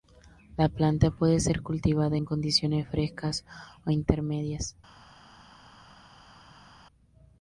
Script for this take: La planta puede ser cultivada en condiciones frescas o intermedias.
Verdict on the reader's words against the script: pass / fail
pass